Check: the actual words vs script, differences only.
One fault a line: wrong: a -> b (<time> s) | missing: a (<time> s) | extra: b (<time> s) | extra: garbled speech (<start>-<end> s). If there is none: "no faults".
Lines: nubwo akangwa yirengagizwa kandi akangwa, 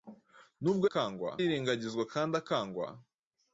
no faults